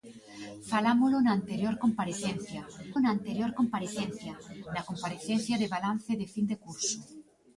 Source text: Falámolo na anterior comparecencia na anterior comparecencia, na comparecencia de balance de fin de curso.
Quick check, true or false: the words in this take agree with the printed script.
true